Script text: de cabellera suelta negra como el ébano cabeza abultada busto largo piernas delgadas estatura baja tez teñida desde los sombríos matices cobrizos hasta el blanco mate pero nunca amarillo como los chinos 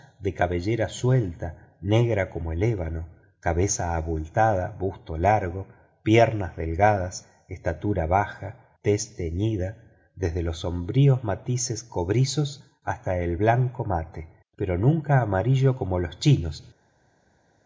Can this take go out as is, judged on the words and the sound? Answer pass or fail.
pass